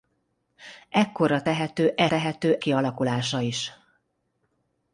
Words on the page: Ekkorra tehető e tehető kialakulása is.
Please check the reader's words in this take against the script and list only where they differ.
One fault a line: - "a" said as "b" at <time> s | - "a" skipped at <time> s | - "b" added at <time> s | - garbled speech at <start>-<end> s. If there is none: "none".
none